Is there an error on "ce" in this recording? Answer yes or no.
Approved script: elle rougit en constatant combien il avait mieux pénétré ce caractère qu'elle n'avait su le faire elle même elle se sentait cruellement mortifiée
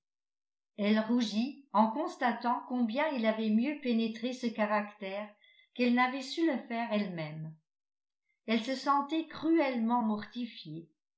no